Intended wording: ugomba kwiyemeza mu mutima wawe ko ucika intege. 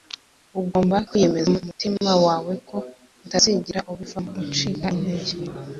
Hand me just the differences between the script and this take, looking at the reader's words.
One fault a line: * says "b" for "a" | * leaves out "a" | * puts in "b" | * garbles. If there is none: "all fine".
* puts in "utazigera ubivamo"